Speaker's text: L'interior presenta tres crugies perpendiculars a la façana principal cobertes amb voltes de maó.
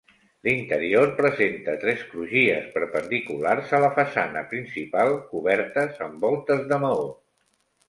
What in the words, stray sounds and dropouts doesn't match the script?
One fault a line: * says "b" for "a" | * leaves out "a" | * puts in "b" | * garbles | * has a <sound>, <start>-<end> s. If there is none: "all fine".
all fine